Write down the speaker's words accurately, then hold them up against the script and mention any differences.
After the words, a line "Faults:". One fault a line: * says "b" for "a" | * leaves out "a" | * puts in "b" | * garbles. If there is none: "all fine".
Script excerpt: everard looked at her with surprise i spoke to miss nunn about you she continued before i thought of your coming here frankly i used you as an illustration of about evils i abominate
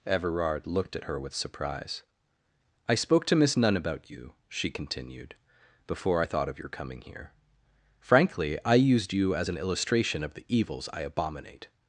everard looked at her with surprise i spoke to miss nunn about you she continued before i thought of your coming here frankly i used you as an illustration of the evils i abominate
Faults:
* says "the" for "about"